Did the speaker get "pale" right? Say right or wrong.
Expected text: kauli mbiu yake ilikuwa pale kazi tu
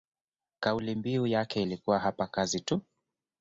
wrong